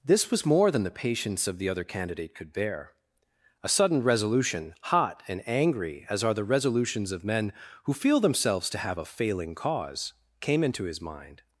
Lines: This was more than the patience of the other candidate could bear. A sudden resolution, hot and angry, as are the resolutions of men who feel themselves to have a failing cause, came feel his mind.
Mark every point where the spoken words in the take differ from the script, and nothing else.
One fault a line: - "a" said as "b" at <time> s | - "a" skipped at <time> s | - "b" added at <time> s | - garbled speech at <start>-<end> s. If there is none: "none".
- "feel" said as "into" at 10.6 s